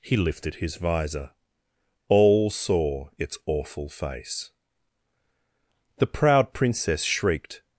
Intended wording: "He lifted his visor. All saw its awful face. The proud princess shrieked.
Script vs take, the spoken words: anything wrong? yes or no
no